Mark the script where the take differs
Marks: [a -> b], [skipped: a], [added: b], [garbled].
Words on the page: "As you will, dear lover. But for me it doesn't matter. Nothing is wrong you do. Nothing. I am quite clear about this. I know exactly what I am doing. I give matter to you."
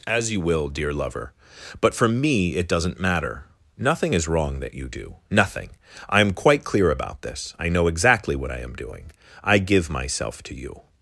"As you will, dear lover. But for me it doesn't matter. Nothing is wrong [added: that] you do. Nothing. I am quite clear about this. I know exactly what I am doing. I give [matter -> myself] to you."